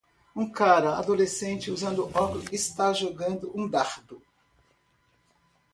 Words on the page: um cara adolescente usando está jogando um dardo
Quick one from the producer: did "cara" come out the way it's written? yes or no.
yes